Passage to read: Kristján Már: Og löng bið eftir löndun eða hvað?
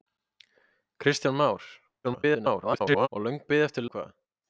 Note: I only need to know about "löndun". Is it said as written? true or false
false